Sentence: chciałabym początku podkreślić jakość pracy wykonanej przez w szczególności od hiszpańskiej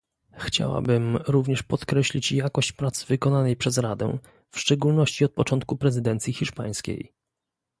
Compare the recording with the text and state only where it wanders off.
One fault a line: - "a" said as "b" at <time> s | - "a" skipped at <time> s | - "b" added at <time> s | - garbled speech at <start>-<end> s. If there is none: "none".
- "początku" said as "również" at 1.3 s
- "radę" added at 3.8 s
- "początku prezydencji" added at 5.3 s